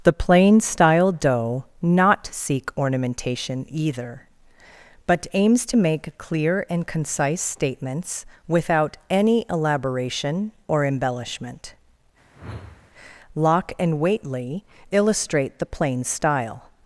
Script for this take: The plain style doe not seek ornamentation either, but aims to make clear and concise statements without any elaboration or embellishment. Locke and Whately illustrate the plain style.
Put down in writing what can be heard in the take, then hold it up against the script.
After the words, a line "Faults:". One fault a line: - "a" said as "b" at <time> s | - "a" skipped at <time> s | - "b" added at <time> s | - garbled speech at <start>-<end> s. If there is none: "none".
The plain style doe not seek ornamentation either, but aims to make clear and concise statements without any elaboration or embellishment. Locke and Whately illustrate the plain style.
Faults:
none